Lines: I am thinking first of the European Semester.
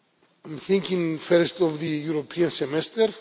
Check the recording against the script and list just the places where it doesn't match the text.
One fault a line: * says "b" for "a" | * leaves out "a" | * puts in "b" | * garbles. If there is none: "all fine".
all fine